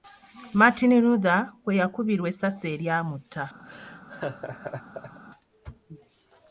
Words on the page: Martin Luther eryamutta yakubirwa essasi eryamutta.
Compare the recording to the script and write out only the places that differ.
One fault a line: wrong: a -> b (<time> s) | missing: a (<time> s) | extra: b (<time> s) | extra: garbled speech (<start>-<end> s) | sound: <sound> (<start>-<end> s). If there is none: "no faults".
wrong: eryamutta -> kwe (1.6 s)
sound: laugh (3.6-5.2 s)